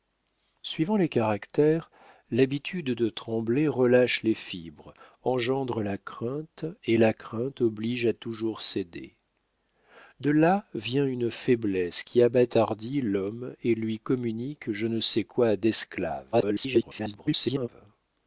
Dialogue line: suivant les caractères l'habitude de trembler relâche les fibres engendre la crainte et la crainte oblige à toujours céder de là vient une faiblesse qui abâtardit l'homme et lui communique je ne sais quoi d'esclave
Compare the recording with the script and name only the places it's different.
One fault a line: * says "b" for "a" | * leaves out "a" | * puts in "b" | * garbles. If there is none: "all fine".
* garbles